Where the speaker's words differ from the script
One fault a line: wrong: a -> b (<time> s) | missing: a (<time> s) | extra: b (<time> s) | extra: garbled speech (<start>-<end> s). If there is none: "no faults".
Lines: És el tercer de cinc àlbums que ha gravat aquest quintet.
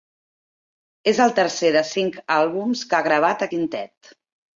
missing: aquest (3.5 s)